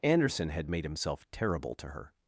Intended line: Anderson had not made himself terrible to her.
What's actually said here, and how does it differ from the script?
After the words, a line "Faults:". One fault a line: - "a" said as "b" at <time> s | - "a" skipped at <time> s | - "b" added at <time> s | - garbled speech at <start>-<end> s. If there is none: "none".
Anderson had made himself terrible to her.
Faults:
- "not" skipped at 0.7 s